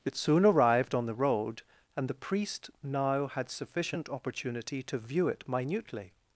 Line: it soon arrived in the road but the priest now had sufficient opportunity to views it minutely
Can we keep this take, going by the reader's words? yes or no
no